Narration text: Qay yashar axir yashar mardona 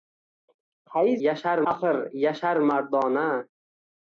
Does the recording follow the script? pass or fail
pass